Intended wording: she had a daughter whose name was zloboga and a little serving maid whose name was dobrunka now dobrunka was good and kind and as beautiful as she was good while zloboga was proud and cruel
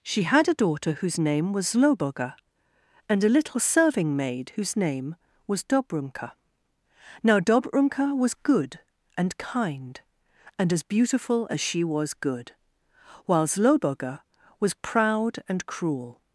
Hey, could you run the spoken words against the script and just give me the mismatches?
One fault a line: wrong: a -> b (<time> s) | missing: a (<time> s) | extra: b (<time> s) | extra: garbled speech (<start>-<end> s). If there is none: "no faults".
no faults